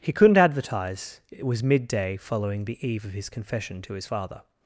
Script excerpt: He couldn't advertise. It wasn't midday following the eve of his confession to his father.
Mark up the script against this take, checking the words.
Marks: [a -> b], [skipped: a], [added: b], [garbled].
He couldn't advertise. It [wasn't -> was] midday following the eve of his confession to his father.